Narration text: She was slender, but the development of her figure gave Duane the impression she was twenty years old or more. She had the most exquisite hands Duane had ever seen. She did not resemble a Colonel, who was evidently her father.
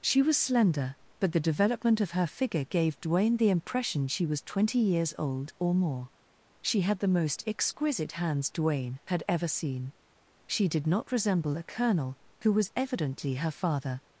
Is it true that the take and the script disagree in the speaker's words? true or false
false